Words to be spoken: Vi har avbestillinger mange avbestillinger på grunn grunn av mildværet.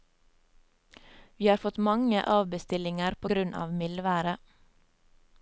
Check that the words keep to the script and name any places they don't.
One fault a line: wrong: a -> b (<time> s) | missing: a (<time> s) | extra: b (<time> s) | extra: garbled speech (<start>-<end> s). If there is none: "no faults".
wrong: avbestillinger -> fått (1.6 s)
missing: grunn (3.6 s)